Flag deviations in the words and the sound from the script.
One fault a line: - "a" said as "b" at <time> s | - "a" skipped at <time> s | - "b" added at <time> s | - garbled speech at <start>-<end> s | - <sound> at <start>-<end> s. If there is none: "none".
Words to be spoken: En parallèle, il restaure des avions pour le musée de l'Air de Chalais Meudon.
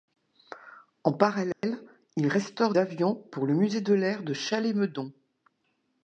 - dropout at 1.5-1.6 s
- "des" skipped at 2.7 s